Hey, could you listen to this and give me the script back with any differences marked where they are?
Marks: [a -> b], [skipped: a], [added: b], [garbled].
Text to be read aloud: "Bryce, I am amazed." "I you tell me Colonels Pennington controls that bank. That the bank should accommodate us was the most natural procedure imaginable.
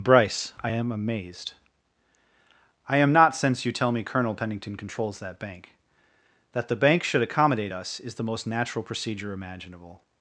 "Bryce, I am amazed." "I [added: am not since] you tell me [Colonels -> Colonel] Pennington controls that bank. That the bank should accommodate us [was -> is] the most natural procedure imaginable.